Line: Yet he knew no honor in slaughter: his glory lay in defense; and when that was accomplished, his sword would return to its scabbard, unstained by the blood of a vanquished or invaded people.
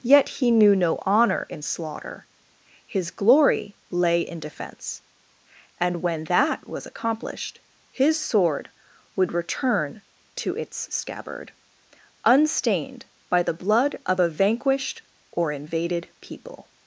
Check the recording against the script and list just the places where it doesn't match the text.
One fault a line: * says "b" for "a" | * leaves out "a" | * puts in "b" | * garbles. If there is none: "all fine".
all fine